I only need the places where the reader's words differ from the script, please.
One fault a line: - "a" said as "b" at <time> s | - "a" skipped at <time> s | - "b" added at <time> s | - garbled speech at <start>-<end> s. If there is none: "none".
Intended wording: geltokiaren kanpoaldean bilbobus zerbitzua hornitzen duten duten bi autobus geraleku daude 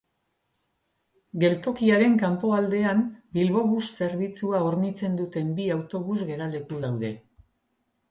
- "duten" skipped at 5.5 s